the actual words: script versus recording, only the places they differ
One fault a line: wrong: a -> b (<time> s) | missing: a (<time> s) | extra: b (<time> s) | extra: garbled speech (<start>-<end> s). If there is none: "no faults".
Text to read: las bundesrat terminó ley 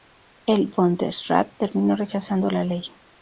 wrong: las -> el (0.5 s)
extra: rechazando la (2.0 s)